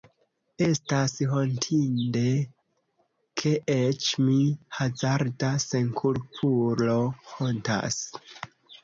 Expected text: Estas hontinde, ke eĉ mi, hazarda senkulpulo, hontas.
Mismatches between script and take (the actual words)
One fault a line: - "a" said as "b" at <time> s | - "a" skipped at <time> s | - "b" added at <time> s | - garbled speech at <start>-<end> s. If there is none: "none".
none